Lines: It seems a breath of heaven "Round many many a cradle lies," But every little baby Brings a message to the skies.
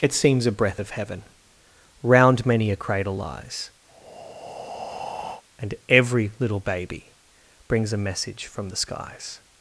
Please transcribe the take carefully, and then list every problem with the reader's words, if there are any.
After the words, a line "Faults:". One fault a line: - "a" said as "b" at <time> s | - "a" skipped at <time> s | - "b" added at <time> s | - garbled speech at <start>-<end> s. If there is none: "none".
It seems a breath of heaven "Round many a cradle lies," And every little baby Brings a message from the skies.
Faults:
- "many" skipped at 2.7 s
- "But" said as "And" at 5.6 s
- "to" said as "from" at 8.5 s